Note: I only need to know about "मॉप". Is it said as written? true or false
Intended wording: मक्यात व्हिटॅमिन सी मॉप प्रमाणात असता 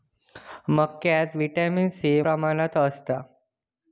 false